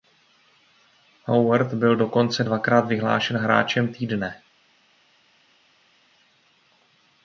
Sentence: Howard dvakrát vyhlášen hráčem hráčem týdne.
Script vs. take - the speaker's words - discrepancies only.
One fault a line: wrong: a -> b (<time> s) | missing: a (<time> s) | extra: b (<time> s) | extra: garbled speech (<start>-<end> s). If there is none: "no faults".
extra: byl dokonce (1.7 s)
missing: hráčem (3.9 s)